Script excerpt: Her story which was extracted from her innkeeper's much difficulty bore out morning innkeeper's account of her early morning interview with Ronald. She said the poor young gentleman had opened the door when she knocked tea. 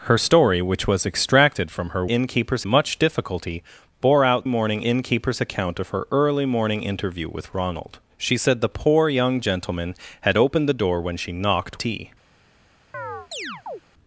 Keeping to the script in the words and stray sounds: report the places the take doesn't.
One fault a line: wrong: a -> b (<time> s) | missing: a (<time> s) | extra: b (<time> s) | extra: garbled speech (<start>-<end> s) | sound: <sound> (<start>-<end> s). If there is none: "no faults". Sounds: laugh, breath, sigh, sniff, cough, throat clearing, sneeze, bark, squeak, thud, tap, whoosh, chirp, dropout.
sound: chirp (12.9-13.8 s)